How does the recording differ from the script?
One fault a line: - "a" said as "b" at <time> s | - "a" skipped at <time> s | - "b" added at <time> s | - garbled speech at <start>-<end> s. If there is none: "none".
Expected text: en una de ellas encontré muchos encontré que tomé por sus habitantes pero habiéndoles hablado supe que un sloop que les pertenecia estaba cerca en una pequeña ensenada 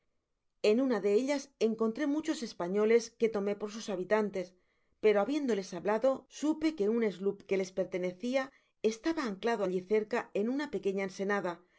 - "encontré" said as "españoles" at 2.4 s
- "anclado alli" added at 9.2 s